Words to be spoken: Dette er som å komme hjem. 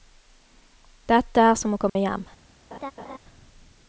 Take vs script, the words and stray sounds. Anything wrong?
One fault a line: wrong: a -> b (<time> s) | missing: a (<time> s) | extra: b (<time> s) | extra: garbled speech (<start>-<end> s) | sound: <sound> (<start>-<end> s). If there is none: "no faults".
sound: dropout (1.9-2.0 s)
sound: laugh (2.7-3.2 s)